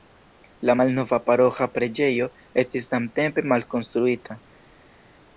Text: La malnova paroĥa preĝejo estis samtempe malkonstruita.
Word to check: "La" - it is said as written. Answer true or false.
true